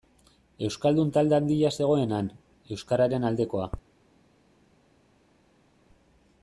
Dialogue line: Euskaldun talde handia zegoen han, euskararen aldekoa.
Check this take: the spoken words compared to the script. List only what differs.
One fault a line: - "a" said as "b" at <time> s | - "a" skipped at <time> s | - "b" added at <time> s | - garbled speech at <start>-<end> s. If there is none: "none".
none